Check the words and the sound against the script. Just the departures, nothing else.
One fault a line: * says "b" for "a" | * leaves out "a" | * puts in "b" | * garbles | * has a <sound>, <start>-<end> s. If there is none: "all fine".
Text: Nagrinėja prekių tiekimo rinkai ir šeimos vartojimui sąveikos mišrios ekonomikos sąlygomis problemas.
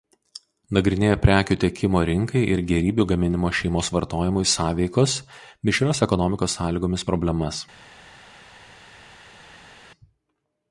* puts in "gėrybių gaminimo"